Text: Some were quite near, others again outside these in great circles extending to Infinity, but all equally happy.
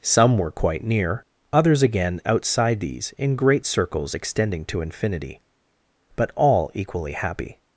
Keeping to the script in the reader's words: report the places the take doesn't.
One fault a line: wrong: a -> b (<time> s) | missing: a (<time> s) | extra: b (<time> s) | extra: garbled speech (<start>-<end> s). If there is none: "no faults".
no faults